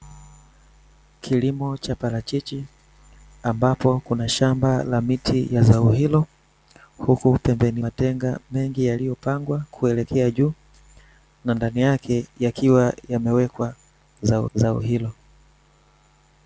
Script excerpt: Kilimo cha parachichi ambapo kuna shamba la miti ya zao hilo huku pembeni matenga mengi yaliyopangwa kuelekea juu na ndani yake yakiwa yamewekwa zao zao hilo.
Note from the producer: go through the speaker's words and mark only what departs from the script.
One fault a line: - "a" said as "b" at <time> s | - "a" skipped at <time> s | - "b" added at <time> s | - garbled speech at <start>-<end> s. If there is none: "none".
none